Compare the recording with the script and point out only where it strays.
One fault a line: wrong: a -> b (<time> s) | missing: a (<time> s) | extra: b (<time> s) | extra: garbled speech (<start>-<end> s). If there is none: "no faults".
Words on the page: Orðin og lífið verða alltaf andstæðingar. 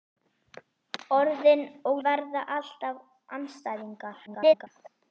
missing: lífið (2.0 s)
extra: garbled speech (4.3-4.7 s)